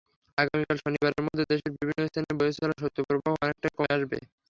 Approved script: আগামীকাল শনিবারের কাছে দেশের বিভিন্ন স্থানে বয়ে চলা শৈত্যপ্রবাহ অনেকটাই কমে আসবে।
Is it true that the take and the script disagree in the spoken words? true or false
true